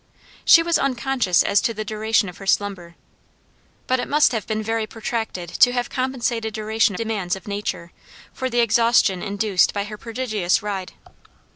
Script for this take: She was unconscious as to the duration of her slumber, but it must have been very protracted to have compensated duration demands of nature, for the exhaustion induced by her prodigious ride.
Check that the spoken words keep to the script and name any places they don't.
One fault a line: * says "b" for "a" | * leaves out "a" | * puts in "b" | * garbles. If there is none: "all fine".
all fine